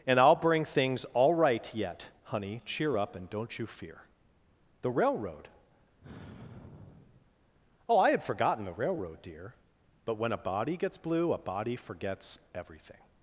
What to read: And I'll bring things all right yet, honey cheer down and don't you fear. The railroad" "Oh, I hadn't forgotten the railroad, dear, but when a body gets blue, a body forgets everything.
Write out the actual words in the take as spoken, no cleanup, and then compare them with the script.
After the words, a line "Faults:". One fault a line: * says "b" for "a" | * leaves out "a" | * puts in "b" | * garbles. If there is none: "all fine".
And I'll bring things all right yet, honey cheer up and don't you fear. The railroad" "Oh, I had forgotten the railroad, dear, but when a body gets blue, a body forgets everything.
Faults:
* says "up" for "down"
* says "had" for "hadn't"